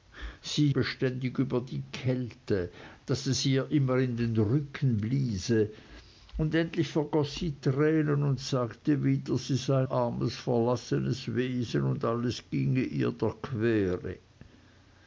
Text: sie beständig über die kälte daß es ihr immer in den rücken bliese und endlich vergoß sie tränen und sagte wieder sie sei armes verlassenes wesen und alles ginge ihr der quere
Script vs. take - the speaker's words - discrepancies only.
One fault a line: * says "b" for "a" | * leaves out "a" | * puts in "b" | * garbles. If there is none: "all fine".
all fine